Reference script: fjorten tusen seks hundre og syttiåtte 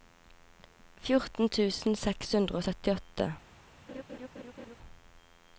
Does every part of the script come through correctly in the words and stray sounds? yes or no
no